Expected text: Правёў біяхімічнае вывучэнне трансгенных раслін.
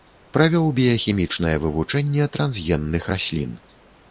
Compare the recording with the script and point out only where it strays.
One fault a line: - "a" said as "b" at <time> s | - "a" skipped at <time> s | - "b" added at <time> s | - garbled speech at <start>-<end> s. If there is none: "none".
none